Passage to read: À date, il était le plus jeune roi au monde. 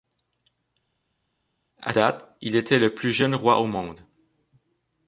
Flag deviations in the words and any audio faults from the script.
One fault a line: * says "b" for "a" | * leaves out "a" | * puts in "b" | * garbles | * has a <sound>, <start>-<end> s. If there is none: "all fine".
all fine